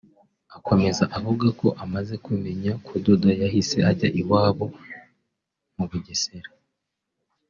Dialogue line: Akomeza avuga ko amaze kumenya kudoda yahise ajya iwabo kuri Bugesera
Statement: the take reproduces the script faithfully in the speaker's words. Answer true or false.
false